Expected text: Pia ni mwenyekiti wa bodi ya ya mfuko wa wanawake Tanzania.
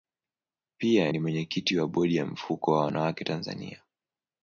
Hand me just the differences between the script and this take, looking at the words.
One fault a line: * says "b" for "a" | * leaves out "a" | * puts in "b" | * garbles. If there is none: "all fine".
* leaves out "ya"